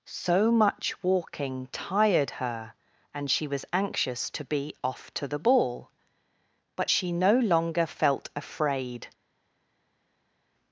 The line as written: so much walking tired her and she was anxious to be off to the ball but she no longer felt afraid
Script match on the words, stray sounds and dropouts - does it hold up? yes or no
yes